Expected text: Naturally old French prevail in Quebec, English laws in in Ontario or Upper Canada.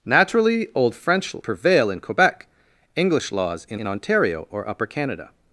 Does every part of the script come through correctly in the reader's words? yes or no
yes